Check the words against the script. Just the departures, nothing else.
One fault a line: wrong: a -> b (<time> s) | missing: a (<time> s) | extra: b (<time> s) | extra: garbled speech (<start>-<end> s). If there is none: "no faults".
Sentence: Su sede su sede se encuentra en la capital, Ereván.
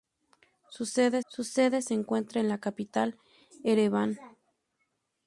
no faults